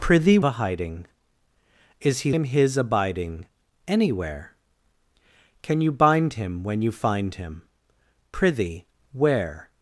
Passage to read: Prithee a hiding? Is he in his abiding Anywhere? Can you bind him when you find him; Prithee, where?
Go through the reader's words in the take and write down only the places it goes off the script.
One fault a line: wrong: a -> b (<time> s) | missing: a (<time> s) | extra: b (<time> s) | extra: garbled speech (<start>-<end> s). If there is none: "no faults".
no faults